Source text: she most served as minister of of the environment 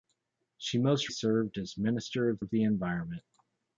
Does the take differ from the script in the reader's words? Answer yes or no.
no